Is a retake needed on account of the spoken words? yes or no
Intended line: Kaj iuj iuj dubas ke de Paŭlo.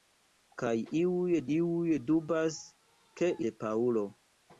no